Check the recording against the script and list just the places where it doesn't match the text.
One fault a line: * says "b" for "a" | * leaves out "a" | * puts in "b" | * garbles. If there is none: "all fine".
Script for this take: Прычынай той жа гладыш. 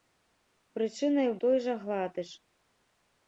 all fine